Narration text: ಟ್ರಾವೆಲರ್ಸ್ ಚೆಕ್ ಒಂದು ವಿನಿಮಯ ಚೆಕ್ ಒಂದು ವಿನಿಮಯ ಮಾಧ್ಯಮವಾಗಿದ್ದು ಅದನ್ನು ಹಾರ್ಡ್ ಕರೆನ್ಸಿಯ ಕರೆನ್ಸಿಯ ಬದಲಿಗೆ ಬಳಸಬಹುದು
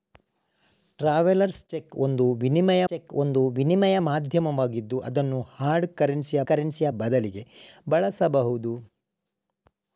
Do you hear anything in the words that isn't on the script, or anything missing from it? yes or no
no